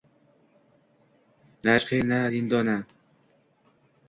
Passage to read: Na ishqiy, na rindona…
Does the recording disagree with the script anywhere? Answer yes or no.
no